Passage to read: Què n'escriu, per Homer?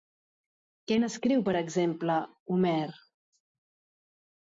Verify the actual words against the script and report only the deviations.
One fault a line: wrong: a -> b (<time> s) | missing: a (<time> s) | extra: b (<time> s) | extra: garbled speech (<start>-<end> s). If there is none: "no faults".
extra: exemple (1.6 s)